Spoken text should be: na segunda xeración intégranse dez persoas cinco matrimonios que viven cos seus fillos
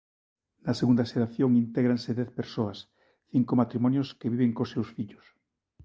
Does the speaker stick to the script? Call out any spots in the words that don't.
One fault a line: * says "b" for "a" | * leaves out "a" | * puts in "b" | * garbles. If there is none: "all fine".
all fine